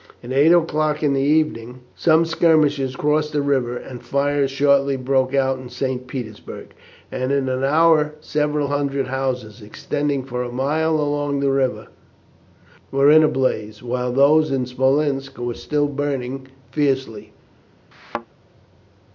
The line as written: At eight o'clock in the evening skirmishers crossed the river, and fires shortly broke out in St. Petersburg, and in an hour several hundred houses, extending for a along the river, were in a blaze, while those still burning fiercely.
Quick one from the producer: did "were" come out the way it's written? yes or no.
yes